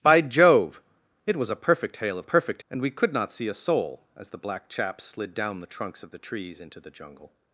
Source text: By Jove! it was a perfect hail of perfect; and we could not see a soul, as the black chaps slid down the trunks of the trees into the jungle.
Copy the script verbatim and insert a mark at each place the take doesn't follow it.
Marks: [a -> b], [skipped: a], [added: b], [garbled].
By Jove! it was a perfect hail of perfect; and we could not see a soul, as the black chaps slid down the trunks of the trees into the jungle.